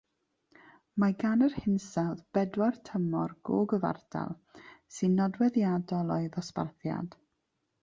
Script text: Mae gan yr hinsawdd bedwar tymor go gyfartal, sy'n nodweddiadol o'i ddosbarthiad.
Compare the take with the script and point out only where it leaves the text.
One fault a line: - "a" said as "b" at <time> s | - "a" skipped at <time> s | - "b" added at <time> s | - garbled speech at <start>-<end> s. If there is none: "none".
none